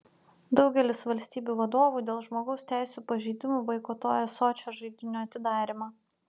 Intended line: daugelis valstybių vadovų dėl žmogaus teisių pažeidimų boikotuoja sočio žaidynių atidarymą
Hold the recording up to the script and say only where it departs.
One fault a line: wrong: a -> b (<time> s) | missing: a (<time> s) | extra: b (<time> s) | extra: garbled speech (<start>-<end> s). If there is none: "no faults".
no faults